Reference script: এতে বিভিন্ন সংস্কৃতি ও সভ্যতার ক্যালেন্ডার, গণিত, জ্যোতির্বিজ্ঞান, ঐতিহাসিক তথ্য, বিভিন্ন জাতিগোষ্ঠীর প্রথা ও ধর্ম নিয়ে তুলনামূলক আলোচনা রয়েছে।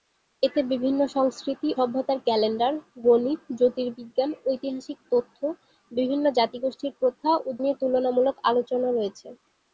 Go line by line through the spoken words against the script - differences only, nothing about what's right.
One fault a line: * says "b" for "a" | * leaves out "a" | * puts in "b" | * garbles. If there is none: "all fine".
* leaves out "ও"
* leaves out "ধর্ম"